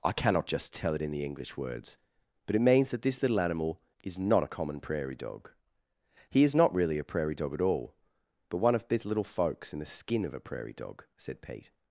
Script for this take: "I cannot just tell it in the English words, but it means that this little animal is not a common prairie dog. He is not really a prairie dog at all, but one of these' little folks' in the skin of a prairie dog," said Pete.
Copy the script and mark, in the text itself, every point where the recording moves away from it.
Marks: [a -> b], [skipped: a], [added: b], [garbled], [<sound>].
"I cannot just tell it in the English words, but it means that this little animal is not a common prairie dog. He is not really a prairie dog at all, but one of these' little folks' in the skin of a prairie dog," said Pete.